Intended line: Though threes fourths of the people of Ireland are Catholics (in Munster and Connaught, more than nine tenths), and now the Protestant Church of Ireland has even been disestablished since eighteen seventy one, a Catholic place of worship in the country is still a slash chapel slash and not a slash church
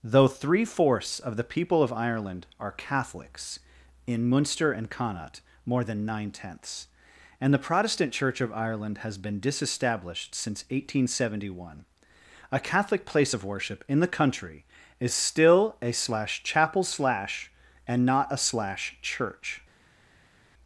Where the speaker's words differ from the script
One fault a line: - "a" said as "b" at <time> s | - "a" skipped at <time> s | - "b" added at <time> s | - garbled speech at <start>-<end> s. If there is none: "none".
- "threes" said as "three" at 0.3 s
- "now" skipped at 7.5 s
- "even" skipped at 9.2 s